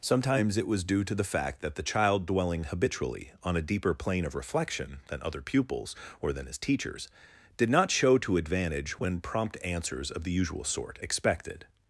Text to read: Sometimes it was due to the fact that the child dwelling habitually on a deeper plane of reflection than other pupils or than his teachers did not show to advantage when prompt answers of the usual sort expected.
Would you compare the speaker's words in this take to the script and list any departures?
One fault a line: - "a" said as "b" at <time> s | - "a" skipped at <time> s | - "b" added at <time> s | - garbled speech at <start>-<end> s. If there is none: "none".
none